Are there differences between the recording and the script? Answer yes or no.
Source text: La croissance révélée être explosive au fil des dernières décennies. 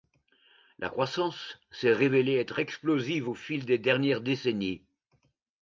yes